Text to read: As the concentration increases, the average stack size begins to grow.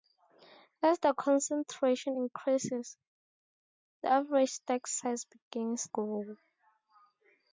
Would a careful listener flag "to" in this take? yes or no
yes